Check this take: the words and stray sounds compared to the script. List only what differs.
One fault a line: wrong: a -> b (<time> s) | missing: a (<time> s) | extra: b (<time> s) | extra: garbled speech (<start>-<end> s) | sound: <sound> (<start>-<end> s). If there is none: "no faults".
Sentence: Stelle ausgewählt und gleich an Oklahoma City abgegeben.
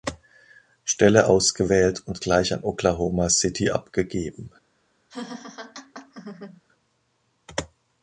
sound: laugh (5.1-6.6 s)